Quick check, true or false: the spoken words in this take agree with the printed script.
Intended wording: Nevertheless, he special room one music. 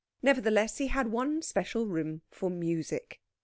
false